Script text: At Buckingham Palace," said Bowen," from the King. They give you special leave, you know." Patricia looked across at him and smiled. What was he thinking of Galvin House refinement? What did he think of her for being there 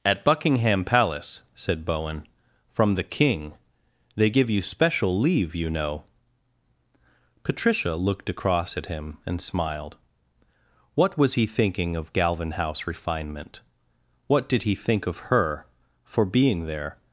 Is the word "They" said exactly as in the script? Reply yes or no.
yes